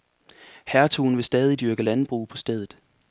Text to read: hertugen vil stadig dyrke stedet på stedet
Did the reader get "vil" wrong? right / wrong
right